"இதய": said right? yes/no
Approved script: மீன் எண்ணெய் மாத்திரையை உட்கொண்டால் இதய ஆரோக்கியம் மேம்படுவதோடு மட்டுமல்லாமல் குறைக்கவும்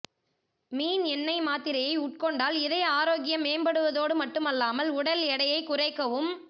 yes